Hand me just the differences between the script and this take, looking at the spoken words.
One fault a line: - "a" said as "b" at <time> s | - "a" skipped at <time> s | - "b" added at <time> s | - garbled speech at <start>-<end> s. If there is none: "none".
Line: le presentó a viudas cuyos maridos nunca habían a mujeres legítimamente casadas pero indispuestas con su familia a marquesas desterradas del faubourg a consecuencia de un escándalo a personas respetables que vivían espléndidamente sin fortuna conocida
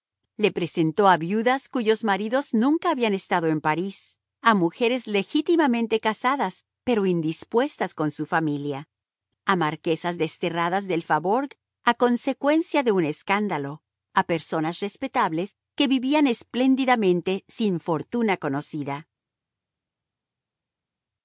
- "estado en parís" added at 3.1 s